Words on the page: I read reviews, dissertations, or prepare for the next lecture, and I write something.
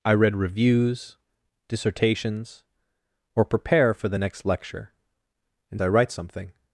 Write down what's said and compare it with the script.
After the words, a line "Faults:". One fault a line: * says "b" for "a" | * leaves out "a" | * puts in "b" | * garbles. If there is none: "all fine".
I read reviews, dissertations, or prepare for the next lecture, and I write something.
Faults:
all fine